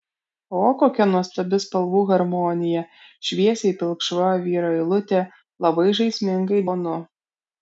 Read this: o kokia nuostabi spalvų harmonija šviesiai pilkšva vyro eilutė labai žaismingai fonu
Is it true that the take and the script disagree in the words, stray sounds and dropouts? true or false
false